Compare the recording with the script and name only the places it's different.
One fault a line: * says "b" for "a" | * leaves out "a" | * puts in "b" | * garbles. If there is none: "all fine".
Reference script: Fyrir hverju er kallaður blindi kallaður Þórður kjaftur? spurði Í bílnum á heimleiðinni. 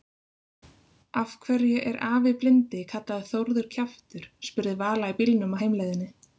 * says "Af" for "Fyrir"
* says "afi" for "kallaður"
* puts in "Vala"